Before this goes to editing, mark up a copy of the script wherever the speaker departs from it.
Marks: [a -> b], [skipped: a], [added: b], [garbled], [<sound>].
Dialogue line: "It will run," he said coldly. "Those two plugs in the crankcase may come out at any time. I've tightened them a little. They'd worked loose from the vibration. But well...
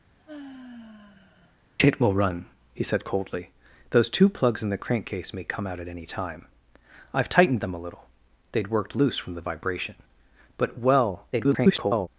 [sigh] "It will run," he said coldly. "Those two plugs in the crankcase may come out at any time. I've tightened them a little. They'd worked loose from the vibration. But well... [garbled]